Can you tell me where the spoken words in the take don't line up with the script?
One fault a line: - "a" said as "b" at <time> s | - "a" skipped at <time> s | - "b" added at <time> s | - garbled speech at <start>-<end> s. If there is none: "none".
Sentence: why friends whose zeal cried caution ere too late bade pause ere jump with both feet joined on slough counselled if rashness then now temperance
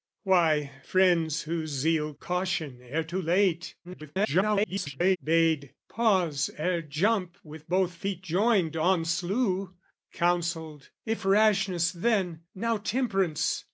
- "cried" skipped at 2.1 s
- garbled speech at 3.8-5.2 s